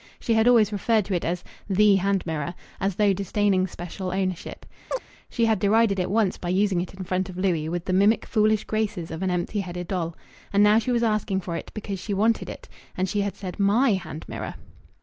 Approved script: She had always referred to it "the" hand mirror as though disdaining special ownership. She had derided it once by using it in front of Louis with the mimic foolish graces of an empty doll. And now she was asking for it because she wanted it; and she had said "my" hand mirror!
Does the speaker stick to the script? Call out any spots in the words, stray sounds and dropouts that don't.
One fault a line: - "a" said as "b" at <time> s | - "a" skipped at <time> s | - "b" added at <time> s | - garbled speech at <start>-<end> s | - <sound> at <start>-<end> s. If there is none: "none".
- "as" added at 1.3 s
- chirp at 4.9-5.0 s
- "headed" added at 9.6 s